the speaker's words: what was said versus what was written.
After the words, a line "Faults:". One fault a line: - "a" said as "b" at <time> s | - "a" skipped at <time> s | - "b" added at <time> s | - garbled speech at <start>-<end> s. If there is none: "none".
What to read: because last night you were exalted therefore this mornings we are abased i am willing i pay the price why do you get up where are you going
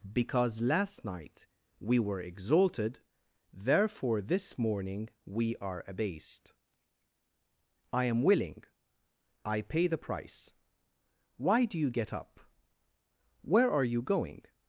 because last night we were exalted therefore this morning we are abased i am willing i pay the price why do you get up where are you going
Faults:
- "you" said as "we" at 1.8 s
- "mornings" said as "morning" at 4.6 s